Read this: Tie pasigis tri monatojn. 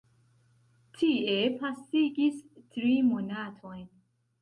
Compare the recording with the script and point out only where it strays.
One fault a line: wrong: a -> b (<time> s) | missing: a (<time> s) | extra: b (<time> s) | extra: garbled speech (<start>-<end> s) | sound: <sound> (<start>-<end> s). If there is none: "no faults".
no faults